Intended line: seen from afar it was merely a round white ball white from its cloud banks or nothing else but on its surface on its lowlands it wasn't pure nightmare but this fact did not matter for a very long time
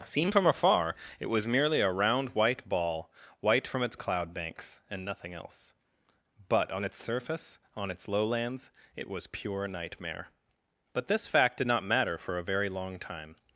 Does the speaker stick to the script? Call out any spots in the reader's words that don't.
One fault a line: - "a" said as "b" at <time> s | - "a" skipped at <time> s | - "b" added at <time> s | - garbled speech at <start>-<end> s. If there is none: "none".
- "or" said as "and" at 4.9 s
- "wasn't" said as "was" at 9.1 s